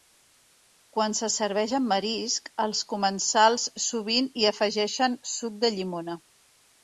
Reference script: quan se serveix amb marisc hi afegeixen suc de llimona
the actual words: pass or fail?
fail